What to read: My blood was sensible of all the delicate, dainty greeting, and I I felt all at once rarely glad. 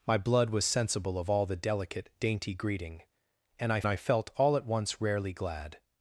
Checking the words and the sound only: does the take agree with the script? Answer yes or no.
yes